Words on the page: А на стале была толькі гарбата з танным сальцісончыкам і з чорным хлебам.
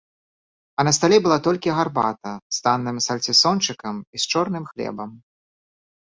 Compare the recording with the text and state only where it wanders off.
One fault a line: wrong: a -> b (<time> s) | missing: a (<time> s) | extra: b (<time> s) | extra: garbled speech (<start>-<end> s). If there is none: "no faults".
no faults